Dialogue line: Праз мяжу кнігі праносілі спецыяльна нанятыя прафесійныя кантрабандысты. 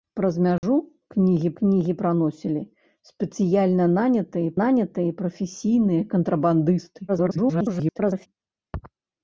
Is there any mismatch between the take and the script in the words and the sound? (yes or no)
yes